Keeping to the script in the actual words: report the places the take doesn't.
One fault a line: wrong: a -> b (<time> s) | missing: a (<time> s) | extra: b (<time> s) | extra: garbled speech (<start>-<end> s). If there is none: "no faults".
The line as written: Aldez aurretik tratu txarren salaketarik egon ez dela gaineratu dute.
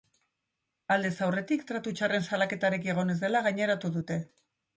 no faults